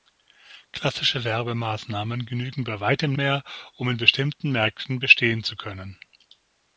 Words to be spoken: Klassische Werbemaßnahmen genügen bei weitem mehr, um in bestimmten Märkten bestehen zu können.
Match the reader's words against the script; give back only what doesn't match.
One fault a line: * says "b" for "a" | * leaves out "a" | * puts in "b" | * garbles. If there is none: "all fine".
all fine